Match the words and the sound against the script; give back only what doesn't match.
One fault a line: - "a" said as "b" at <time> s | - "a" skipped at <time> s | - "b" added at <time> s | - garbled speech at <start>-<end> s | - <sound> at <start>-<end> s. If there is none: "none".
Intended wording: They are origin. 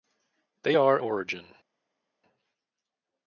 none